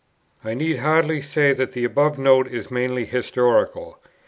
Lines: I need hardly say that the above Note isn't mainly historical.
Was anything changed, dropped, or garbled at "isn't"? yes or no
yes